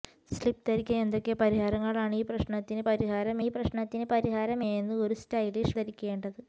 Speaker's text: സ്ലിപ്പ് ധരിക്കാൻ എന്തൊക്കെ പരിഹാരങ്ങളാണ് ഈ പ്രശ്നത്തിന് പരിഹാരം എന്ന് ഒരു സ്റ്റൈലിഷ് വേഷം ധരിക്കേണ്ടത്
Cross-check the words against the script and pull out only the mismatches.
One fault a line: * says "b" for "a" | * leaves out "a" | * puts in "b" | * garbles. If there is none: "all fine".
* puts in "ഈ പ്രശ്നത്തിന് പരിഹാരം"
* leaves out "വേഷം"